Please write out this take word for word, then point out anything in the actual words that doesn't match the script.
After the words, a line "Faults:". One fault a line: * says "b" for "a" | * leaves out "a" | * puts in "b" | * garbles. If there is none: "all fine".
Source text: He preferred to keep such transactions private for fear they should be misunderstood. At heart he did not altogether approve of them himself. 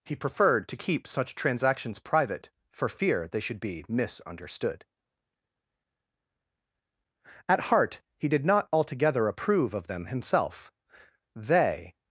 He preferred to keep such transactions private for fear they should be misunderstood. At heart he did not altogether approve of them himself. They
Faults:
* puts in "They"